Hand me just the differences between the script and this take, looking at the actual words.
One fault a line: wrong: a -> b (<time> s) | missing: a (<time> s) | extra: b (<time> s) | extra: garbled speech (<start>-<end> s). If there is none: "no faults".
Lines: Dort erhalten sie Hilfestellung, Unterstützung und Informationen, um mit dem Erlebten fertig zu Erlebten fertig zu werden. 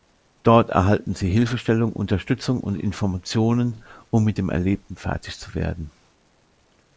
missing: Erlebten fertig zu (5.5 s)